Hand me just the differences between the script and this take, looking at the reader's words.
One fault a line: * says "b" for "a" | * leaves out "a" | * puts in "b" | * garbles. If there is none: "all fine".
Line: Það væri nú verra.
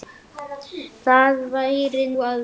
* leaves out "nú"